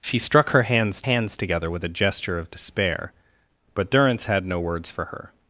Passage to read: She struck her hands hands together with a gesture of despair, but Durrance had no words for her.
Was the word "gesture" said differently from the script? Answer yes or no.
no